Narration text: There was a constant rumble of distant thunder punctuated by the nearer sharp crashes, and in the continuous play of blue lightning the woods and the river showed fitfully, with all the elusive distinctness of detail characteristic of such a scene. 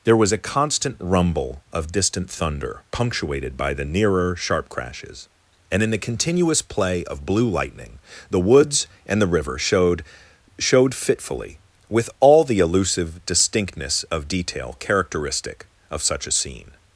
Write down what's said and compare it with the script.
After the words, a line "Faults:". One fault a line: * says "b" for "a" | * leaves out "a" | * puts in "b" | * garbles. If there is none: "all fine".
There was a constant rumble of distant thunder punctuated by the nearer sharp crashes, and in the continuous play of blue lightning the woods and the river showed showed fitfully, with all the elusive distinctness of detail characteristic of such a scene.
Faults:
* puts in "showed"